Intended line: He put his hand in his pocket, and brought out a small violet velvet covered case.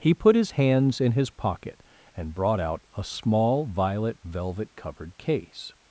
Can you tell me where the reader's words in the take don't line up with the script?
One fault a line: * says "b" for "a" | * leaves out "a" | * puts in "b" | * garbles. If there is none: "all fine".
* says "hands" for "hand"